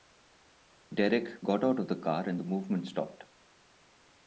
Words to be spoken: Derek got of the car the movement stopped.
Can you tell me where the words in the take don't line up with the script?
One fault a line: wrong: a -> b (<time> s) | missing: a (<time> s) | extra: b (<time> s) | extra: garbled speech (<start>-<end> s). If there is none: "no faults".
extra: out (1.6 s)
extra: and (2.3 s)